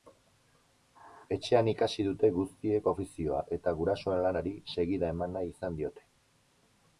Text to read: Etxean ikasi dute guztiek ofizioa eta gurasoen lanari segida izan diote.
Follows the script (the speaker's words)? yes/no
no